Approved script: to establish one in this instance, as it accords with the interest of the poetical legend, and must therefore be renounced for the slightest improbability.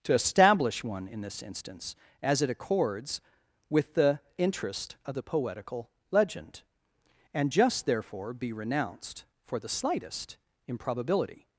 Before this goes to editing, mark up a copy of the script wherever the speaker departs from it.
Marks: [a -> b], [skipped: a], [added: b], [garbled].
to establish one in this instance, as it accords with the interest of the poetical legend, and [must -> just] therefore be renounced for the slightest improbability.